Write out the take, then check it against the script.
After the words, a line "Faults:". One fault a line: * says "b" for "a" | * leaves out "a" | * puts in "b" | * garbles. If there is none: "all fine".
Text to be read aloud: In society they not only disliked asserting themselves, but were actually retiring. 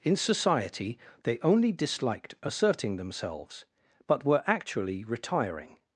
In society they only disliked asserting themselves, but were actually retiring.
Faults:
* leaves out "not"